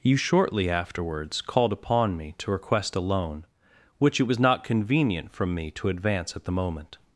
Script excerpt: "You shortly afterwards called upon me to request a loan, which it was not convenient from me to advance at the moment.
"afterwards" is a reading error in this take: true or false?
false